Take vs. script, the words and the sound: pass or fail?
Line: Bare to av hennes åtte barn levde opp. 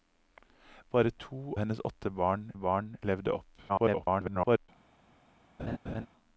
fail